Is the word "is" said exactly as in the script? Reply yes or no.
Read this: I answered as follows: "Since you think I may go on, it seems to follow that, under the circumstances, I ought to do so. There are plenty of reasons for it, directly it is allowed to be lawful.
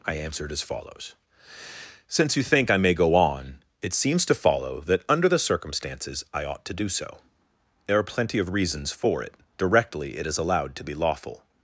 yes